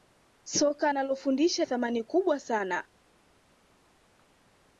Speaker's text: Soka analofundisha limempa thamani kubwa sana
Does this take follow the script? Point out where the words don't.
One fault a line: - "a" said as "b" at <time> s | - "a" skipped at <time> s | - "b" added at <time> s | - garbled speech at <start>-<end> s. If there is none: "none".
- "limempa" skipped at 1.6 s